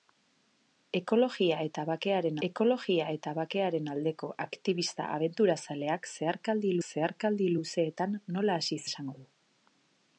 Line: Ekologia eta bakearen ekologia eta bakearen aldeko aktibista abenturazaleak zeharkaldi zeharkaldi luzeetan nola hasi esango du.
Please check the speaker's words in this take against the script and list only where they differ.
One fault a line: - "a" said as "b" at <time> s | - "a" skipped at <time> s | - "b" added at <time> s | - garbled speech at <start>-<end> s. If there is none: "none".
none